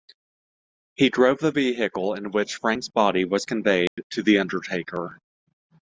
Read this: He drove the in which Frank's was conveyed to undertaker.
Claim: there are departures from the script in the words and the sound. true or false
true